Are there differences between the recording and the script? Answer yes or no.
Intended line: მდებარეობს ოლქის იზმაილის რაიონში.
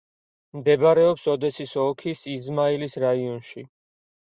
yes